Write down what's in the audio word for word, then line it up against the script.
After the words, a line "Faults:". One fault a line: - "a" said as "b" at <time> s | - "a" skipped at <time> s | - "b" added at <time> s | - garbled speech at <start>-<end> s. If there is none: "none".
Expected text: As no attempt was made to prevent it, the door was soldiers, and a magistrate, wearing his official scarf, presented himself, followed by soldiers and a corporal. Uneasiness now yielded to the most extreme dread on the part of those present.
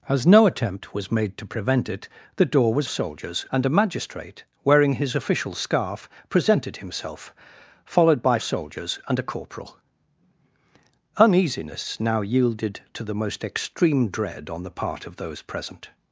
As no attempt was made to prevent it, the door was soldiers, and a magistrate, wearing his official scarf, presented himself, followed by soldiers and a corporal. Uneasiness now yielded to the most extreme dread on the part of those present.
Faults:
none